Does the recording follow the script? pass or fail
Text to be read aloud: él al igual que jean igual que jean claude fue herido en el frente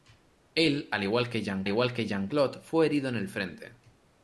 pass